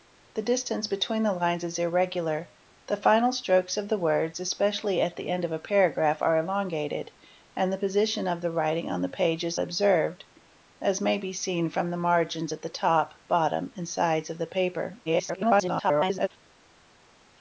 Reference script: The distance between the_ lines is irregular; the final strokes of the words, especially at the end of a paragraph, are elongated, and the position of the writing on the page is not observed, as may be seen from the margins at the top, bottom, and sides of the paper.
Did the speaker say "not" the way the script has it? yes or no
no